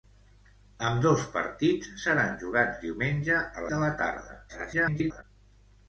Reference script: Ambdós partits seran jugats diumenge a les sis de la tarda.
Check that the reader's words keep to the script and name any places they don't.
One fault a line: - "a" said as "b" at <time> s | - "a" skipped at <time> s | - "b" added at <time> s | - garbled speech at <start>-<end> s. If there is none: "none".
- "les sis" skipped at 3.7 s
- garbled speech at 4.5-5.2 s